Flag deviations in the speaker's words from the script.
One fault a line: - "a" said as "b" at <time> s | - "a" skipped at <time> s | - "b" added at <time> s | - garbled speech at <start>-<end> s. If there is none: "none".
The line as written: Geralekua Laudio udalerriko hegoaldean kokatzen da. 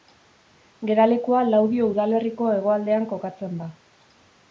none